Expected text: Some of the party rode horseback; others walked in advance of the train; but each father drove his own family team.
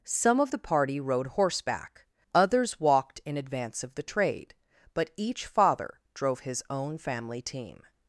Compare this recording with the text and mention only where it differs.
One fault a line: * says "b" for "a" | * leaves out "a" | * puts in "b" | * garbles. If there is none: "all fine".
* says "trade" for "train"